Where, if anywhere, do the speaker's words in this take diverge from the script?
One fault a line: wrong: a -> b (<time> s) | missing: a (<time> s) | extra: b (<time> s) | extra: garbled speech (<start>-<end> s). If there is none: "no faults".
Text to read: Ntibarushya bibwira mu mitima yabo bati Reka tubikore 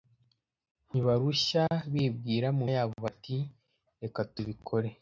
missing: mitima (2.6 s)